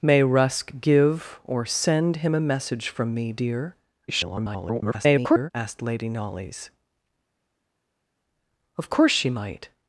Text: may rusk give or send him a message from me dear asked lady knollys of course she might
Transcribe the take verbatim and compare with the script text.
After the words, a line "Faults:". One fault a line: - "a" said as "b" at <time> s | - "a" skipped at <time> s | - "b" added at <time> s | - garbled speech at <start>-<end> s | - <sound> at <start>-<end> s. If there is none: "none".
may rusk give or send him a message from me dear [garbled] asked lady knollys of course she might
Faults:
- garbled speech at 4.1-5.5 s